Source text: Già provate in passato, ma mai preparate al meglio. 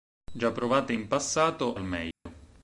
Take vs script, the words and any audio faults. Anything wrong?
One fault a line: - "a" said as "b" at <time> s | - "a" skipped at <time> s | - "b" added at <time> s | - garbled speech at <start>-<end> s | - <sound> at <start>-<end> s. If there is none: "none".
- "ma mai preparate" skipped at 1.8 s
- dropout at 2.1-2.3 s